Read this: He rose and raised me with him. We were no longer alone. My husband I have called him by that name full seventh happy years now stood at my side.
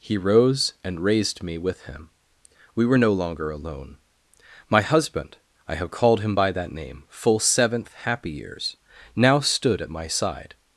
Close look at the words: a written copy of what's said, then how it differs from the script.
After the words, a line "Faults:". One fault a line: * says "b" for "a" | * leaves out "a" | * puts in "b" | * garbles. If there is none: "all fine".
He rose and raised me with him. We were no longer alone. My husband I have called him by that name full seventh happy years now stood at my side.
Faults:
all fine